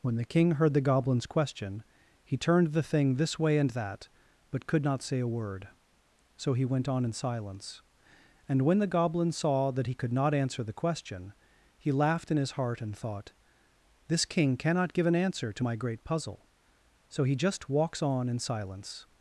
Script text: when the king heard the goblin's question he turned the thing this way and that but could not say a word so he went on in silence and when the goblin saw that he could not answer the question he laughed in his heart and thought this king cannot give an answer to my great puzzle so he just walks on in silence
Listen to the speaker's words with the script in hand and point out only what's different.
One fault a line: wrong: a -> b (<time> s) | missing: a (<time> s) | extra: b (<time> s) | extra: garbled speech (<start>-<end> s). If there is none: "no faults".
no faults